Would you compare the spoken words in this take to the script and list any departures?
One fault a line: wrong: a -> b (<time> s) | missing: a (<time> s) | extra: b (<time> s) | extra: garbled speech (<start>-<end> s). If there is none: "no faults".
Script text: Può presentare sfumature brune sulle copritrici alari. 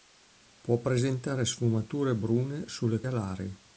missing: copritrici (3.0 s)